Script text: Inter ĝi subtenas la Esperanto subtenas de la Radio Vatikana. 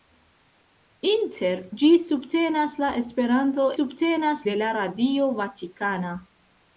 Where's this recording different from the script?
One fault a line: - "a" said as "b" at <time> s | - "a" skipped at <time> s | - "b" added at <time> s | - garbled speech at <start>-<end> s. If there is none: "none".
none